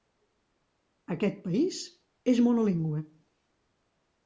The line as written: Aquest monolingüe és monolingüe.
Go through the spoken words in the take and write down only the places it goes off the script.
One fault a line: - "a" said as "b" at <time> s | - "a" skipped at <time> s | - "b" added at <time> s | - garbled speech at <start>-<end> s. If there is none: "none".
- "monolingüe" said as "país" at 1.5 s